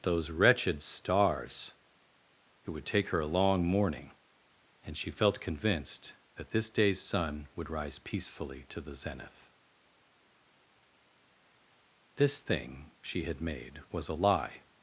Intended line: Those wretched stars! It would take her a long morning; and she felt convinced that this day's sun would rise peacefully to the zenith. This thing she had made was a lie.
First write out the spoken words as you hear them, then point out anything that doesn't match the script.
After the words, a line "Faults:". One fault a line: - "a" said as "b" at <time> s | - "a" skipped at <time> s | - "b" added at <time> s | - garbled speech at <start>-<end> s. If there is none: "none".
Those wretched stars! It would take her a long morning; and she felt convinced that this day's sun would rise peacefully to the zenith. This thing she had made was a lie.
Faults:
none